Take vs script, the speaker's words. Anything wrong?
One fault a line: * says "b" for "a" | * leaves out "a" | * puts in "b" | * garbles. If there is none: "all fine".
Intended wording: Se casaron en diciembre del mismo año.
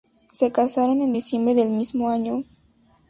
all fine